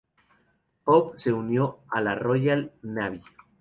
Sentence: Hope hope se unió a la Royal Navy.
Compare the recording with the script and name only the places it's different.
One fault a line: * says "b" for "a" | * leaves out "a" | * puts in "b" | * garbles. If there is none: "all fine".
* leaves out "hope"